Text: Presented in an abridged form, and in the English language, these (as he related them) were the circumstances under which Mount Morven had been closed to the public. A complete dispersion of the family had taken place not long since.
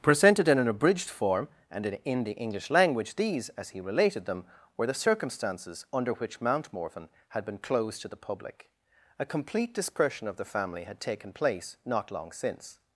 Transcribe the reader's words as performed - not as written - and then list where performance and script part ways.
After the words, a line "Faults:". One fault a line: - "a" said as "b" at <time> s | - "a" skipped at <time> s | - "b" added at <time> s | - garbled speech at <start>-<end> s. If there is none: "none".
Presented in an abridged form, and in in the English language, these (as he related them) were the circumstances under which Mount Morven had been closed to the public. A complete dispersion of the family had taken place not long since.
Faults:
- "in" added at 2.0 s